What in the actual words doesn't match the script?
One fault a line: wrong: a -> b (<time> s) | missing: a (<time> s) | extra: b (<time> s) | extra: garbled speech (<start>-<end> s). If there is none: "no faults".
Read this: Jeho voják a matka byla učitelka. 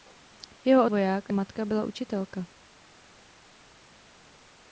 no faults